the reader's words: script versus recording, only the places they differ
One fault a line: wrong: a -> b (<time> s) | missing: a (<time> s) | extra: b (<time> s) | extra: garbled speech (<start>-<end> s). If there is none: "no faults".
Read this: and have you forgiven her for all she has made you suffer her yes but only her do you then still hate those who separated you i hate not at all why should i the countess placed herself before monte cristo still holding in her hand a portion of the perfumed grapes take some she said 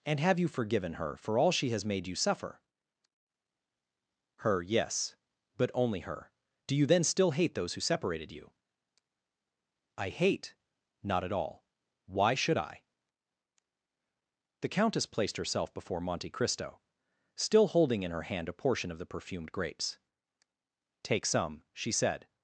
no faults